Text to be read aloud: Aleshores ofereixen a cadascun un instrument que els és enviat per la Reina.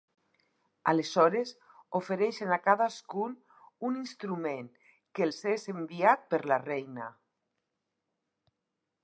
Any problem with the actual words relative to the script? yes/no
no